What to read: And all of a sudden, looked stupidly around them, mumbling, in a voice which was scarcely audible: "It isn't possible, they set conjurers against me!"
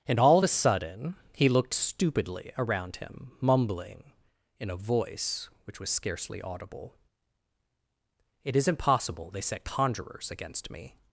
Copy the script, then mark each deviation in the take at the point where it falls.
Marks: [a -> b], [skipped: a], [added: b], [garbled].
And all of a sudden, [added: he] looked stupidly around [them, -> him] mumbling, in a voice which was scarcely audible: "It isn't possible, they set conjurers against me!"